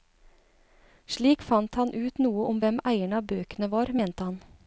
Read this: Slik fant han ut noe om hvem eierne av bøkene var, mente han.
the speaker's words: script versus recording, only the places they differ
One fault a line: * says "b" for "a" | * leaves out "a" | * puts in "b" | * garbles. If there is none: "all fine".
all fine